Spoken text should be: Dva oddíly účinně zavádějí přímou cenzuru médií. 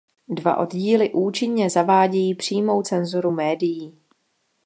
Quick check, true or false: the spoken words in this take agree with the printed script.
true